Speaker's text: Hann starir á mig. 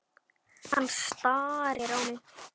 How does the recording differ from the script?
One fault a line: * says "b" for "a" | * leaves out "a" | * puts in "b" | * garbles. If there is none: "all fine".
all fine